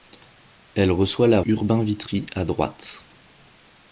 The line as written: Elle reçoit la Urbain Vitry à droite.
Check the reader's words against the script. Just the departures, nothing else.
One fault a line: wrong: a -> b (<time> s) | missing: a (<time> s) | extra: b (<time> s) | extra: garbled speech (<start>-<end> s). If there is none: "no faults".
no faults